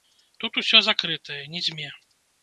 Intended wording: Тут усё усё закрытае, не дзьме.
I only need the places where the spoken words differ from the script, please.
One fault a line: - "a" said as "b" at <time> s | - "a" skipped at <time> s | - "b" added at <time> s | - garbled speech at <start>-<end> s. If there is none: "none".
- "усё" skipped at 0.8 s